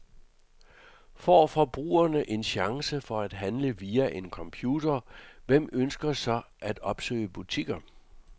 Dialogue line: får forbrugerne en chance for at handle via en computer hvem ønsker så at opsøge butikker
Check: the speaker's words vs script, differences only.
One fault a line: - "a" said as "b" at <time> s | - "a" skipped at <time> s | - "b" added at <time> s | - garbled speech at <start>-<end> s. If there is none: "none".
none